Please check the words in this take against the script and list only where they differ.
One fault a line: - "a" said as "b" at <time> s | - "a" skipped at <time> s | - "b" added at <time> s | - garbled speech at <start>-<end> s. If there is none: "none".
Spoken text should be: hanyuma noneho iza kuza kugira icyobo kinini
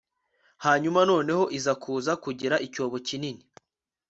none